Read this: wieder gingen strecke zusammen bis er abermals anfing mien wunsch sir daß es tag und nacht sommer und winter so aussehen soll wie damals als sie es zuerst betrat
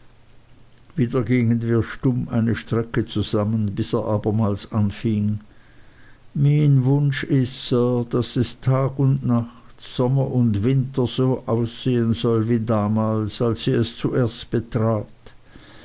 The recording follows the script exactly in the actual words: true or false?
false